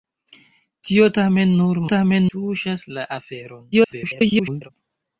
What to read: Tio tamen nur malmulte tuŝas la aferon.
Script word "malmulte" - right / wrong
wrong